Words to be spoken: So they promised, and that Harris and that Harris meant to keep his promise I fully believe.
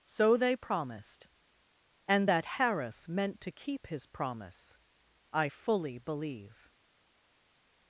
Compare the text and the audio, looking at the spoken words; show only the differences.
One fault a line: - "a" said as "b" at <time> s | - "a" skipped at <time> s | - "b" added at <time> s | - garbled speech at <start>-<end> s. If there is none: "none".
- "and that Harris" skipped at 3.1 s